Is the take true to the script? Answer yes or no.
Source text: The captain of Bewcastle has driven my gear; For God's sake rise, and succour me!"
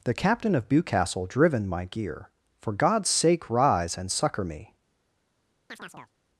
no